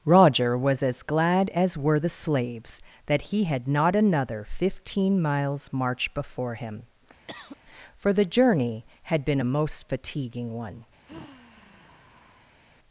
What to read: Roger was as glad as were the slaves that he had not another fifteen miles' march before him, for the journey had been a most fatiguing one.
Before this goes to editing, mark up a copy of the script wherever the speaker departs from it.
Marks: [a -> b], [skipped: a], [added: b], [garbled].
Roger was as glad as were the slaves that he had not another fifteen miles' march before him, for the journey had been a most fatiguing one.